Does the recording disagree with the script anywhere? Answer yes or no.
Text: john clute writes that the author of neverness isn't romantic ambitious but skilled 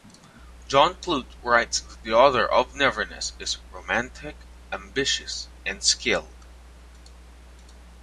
yes